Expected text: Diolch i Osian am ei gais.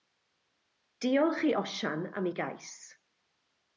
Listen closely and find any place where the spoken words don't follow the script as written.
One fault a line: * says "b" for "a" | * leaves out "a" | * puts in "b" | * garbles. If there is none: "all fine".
all fine